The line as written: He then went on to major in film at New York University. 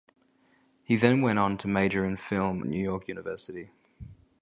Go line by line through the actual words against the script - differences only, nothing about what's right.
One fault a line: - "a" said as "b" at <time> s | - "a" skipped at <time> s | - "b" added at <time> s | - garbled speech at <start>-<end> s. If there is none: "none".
- "at" skipped at 2.6 s